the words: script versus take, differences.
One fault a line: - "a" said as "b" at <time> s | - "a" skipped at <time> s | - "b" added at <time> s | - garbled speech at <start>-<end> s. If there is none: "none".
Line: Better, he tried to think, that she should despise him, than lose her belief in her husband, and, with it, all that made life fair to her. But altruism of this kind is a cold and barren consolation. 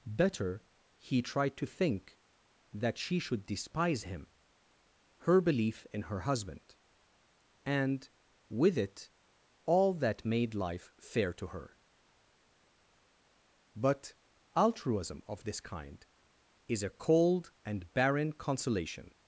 - "than lose" skipped at 4.3 s